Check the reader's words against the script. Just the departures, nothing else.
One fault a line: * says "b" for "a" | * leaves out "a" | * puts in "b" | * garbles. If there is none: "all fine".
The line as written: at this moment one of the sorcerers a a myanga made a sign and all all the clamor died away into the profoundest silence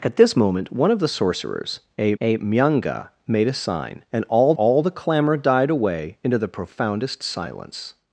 all fine